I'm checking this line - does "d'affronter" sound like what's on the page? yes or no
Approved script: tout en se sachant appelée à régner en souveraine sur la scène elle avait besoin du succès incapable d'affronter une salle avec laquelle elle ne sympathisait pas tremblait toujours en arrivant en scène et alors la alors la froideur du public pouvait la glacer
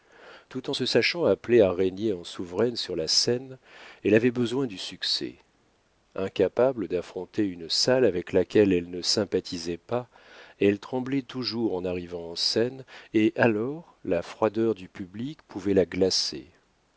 yes